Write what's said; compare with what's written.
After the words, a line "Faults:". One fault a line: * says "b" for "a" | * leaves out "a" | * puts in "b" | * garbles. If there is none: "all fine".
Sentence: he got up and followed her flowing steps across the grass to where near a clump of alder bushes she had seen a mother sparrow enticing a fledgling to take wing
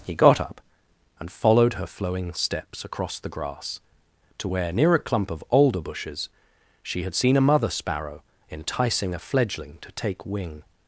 he got up and followed her flowing steps across the grass to where near a clump of alder bushes she had seen a mother sparrow enticing a fledgling to take wing
Faults:
all fine